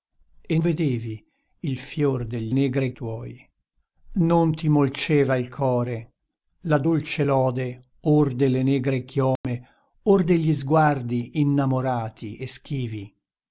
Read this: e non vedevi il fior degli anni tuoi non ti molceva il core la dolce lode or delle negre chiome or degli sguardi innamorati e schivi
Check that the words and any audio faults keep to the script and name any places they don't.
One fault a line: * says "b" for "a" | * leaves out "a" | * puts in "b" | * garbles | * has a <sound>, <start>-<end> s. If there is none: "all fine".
* leaves out "non"
* says "negre" for "anni"
* has a dropout, 9.4-9.4 s